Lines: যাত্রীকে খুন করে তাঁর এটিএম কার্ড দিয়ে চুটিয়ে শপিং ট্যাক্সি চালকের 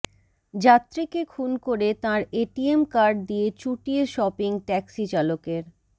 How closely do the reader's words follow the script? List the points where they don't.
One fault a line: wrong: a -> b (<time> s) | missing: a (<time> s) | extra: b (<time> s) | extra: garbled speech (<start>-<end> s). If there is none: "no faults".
no faults